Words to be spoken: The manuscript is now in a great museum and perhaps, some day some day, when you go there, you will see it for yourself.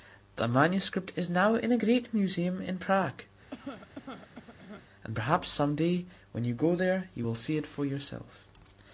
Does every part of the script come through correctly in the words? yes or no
no